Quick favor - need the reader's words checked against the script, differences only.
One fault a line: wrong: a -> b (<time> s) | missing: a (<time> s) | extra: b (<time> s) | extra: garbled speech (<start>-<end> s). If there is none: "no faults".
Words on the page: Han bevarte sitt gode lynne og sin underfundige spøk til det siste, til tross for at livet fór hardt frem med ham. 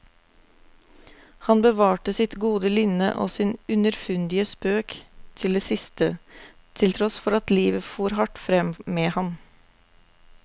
no faults